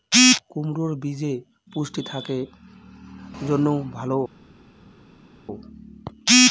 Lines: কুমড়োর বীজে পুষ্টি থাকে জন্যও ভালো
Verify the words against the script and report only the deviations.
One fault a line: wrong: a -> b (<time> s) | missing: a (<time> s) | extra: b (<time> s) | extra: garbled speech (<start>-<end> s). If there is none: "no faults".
no faults